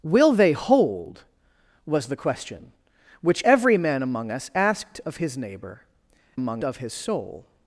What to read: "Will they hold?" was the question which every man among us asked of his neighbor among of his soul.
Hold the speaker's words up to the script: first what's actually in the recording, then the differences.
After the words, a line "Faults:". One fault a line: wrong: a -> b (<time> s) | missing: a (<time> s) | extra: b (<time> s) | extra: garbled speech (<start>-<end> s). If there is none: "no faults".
"Will they hold?" was the question which every man among us asked of his neighbor among of his soul.
Faults:
no faults